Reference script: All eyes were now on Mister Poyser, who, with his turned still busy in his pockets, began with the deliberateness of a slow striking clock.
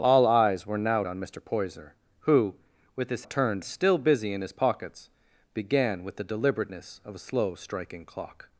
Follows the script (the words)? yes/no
yes